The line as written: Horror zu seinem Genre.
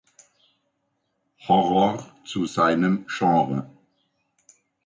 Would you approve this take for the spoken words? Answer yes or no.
yes